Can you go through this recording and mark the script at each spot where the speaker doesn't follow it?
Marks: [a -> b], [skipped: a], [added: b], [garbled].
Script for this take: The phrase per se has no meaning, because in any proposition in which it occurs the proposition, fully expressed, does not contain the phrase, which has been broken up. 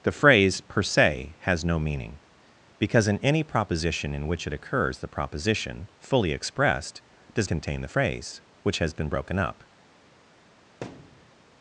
The phrase per se has no meaning, because in any proposition in which it occurs the proposition, fully expressed, does [skipped: not] contain the phrase, which has been broken up.